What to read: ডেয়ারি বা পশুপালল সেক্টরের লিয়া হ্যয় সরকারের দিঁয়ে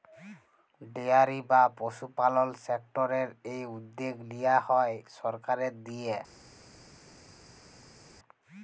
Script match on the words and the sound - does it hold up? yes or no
no